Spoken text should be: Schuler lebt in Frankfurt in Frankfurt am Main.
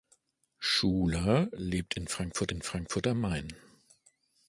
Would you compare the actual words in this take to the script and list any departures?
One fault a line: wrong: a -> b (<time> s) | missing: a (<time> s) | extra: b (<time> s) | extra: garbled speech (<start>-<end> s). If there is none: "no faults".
no faults